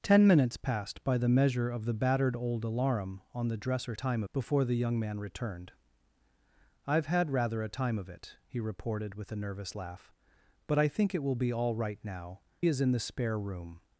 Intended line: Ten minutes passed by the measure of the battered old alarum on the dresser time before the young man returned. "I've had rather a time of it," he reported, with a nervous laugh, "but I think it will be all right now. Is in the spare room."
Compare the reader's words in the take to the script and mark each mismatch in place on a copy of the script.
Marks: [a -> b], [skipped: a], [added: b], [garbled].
Ten minutes passed by the measure of the battered old alarum on the dresser time before the young man returned. "I've had rather a time of it," he reported, with a nervous laugh, "but I think it will be all right now. Is in the spare room."